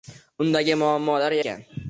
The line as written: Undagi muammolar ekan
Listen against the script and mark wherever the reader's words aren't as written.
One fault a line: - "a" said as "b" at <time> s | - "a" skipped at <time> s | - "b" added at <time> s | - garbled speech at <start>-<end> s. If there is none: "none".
none